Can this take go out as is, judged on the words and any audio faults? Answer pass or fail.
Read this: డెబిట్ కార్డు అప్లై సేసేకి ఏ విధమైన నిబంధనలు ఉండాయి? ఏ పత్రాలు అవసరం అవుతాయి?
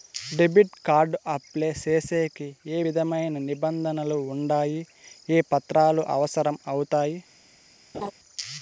fail